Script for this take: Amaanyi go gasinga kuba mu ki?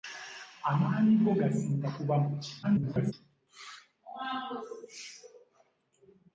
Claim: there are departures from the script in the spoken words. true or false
true